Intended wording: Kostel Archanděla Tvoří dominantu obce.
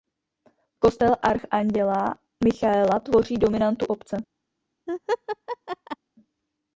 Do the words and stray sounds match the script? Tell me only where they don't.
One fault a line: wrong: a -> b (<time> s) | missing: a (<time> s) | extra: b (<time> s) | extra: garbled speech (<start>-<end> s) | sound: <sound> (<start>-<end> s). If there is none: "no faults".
extra: Michaela (2.4 s)
sound: laugh (4.9-6.0 s)